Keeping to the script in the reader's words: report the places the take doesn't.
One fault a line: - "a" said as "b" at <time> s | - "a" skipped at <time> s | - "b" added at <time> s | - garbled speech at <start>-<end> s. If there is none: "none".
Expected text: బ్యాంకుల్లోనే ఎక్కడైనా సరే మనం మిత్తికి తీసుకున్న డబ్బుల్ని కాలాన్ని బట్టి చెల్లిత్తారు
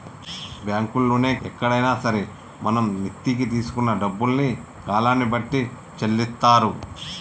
none